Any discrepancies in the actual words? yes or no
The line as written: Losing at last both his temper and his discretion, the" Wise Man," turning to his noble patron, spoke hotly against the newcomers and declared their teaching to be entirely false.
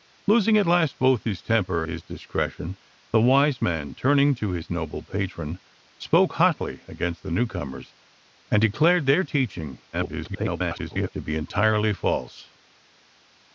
yes